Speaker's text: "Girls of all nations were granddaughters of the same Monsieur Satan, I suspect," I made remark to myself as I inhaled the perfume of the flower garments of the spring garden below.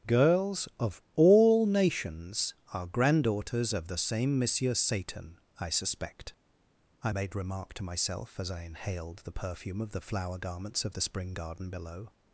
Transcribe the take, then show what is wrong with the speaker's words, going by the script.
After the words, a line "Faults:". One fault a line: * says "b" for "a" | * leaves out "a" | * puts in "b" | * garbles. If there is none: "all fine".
"Girls of all nations are granddaughters of the same Monsieur Satan, I suspect," I made remark to myself as I inhaled the perfume of the flower garments of the spring garden below.
Faults:
* says "are" for "were"